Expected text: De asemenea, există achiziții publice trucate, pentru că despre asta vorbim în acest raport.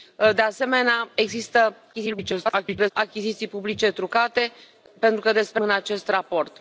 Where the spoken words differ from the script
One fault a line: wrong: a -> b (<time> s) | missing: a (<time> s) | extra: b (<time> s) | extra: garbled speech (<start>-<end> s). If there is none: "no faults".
extra: garbled speech (1.9-2.9 s)
missing: asta vorbim (5.6 s)